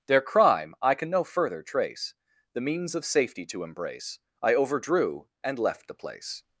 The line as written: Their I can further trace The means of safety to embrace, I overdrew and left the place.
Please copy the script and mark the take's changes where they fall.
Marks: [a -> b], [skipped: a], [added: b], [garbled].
Their [added: crime] I can [added: no] further trace The means of safety to embrace, I overdrew and left the place.